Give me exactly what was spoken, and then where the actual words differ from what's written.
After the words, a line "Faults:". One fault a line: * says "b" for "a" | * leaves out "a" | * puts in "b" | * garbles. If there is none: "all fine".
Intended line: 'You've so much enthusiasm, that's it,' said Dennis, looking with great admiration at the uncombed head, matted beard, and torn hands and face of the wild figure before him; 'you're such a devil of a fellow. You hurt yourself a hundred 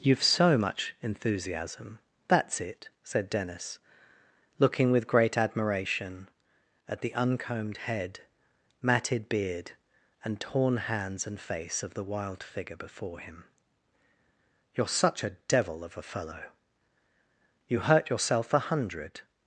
'You've so much enthusiasm, that's it,' said Dennis, looking with great admiration at the uncombed head, matted beard, and torn hands and face of the wild figure before him; 'you're such a devil of a fellow. You hurt yourself a hundred
Faults:
all fine